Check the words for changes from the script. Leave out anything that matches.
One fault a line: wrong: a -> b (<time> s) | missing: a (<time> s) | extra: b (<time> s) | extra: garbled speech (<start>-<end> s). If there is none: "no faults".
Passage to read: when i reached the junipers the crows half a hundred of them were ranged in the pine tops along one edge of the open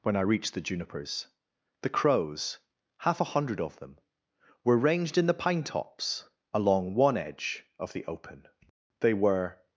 extra: they were (9.0 s)